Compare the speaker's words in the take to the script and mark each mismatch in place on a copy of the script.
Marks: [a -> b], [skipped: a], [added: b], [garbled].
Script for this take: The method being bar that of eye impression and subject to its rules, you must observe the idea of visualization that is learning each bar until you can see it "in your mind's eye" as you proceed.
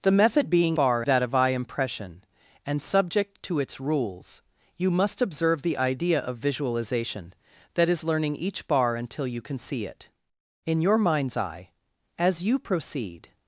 The method being bar that of eye impression and subject to its rules, you must observe the idea of visualization that is learning each bar until you can see it "in your mind's eye" as you proceed.